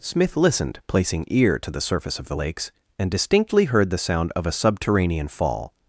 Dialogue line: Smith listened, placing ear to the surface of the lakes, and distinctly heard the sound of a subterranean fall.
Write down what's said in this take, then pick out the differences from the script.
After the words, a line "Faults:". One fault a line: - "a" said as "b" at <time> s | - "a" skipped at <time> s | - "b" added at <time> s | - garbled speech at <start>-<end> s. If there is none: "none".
Smith listened, placing ear to the surface of the lakes, and distinctly heard the sound of a subterranean fall.
Faults:
none